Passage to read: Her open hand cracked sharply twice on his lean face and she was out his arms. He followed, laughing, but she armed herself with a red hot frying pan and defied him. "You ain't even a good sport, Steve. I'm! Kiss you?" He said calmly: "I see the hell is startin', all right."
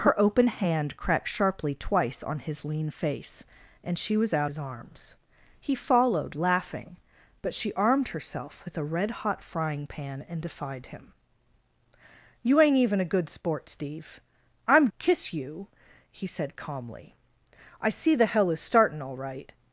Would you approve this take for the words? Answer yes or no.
yes